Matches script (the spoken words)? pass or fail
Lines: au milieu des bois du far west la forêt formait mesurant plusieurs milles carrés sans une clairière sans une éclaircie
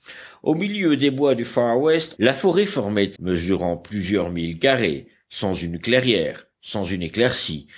pass